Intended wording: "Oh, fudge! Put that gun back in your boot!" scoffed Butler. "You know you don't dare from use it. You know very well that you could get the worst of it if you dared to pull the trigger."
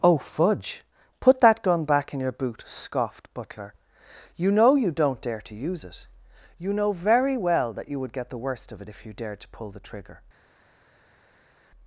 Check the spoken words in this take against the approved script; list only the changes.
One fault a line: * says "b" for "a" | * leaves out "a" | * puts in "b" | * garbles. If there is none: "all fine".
* says "to" for "from"
* says "would" for "could"